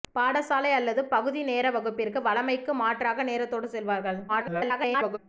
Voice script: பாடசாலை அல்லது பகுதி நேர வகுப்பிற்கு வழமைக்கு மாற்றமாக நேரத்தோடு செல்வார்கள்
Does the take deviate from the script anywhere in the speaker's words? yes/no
yes